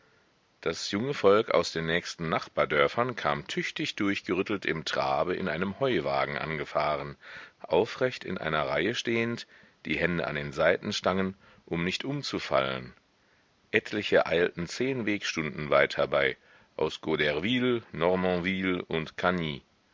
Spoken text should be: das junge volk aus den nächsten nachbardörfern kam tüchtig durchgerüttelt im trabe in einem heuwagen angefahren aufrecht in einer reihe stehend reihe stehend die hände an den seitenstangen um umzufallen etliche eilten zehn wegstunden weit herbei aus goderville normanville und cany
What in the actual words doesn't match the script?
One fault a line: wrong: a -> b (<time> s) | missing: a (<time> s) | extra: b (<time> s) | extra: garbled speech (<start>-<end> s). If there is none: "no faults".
missing: reihe stehend (9.4 s)
extra: nicht (11.8 s)